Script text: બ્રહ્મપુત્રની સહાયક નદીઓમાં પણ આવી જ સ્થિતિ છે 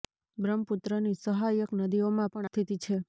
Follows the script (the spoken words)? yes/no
no